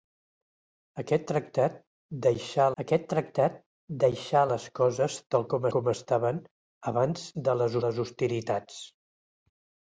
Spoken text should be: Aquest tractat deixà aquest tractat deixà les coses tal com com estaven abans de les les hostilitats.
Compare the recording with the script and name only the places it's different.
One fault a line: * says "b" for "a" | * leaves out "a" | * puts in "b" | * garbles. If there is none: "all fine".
all fine